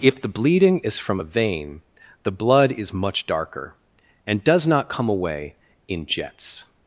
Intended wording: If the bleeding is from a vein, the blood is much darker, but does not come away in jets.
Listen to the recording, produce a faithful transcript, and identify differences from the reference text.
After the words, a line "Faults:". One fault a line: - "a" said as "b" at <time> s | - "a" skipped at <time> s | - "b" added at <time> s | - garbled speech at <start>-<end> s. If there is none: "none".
If the bleeding is from a vein, the blood is much darker, and does not come away in jets.
Faults:
- "but" said as "and" at 4.3 s